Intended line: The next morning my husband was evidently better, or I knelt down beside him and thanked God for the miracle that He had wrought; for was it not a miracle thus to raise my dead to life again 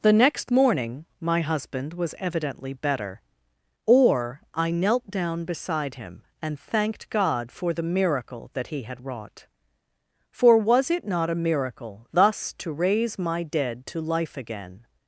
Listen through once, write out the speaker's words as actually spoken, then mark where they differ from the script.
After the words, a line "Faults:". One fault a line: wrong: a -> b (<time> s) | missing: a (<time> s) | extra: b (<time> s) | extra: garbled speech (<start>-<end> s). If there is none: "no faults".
The next morning my husband was evidently better, or I knelt down beside him and thanked God for the miracle that He had wrought; for was it not a miracle thus to raise my dead to life again
Faults:
no faults